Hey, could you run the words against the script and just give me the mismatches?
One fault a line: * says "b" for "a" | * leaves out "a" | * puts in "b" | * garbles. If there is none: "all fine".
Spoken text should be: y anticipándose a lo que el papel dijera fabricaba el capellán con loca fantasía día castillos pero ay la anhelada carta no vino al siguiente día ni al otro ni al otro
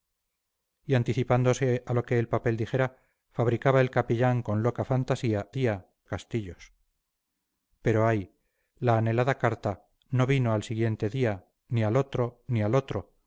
all fine